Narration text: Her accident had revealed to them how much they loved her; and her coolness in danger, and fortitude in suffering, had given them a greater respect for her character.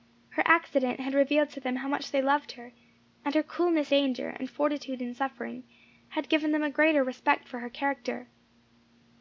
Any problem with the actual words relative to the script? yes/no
yes